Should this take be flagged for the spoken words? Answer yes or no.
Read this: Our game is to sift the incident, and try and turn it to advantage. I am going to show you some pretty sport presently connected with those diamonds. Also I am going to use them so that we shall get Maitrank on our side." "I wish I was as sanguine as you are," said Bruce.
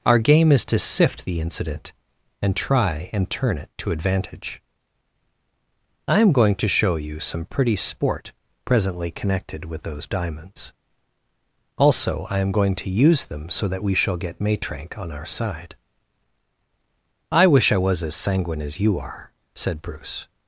no